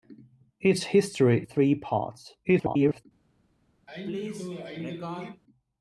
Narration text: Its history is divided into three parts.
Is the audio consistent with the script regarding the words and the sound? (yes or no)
no